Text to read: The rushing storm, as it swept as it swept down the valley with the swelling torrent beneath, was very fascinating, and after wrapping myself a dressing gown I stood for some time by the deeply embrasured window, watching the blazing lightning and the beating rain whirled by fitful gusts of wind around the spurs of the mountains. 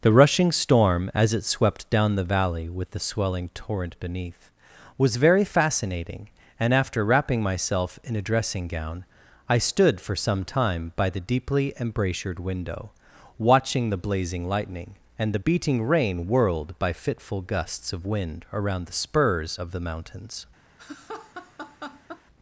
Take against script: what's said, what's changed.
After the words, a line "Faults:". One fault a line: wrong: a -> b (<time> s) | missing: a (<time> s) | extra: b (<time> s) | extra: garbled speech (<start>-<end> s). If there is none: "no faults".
The rushing storm, as it swept down the valley with the swelling torrent beneath, was very fascinating, and after wrapping myself in a dressing gown I stood for some time by the deeply embrasured window, watching the blazing lightning and the beating rain whirled by fitful gusts of wind around the spurs of the mountains.
Faults:
missing: as it swept (1.9 s)
extra: in (8.0 s)